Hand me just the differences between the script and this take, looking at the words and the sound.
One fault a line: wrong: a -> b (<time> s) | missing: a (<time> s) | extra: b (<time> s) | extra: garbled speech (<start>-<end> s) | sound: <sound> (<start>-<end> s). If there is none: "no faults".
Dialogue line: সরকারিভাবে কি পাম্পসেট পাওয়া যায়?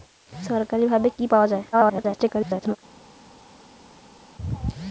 missing: পাম্পসেট (1.2 s)
extra: garbled speech (1.7-2.8 s)